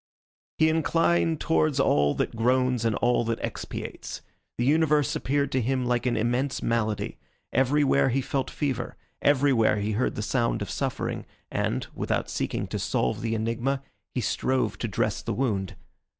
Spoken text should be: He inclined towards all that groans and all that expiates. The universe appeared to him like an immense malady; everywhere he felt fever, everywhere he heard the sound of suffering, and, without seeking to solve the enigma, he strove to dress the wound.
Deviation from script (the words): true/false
false